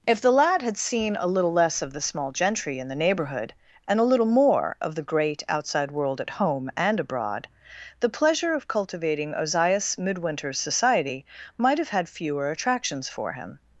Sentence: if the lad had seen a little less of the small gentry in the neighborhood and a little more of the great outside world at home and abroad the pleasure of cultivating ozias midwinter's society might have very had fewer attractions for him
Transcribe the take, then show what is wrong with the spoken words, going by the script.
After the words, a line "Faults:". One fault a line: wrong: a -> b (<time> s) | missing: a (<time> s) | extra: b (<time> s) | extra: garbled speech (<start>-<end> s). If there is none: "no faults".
if the lad had seen a little less of the small gentry in the neighborhood and a little more of the great outside world at home and abroad the pleasure of cultivating ozias midwinter's society might have had fewer attractions for him
Faults:
missing: very (11.9 s)